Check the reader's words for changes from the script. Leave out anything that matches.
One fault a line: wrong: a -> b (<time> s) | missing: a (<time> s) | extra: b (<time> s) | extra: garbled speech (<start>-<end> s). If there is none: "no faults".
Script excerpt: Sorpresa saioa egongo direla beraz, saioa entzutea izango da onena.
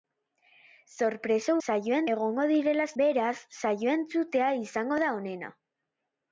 no faults